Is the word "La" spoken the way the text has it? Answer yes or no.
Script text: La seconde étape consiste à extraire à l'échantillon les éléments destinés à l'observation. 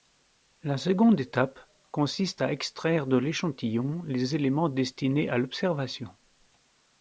yes